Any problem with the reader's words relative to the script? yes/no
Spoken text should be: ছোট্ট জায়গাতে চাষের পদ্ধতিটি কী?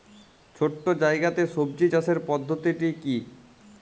yes